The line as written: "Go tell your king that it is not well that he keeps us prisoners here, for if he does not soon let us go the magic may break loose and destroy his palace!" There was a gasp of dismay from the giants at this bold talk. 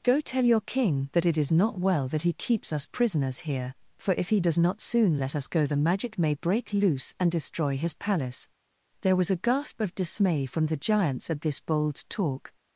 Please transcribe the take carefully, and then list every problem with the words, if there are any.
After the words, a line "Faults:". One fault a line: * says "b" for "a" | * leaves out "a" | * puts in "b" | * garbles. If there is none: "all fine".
"Go tell your king that it is not well that he keeps us prisoners here, for if he does not soon let us go the magic may break loose and destroy his palace!" There was a gasp of dismay from the giants at this bold talk.
Faults:
all fine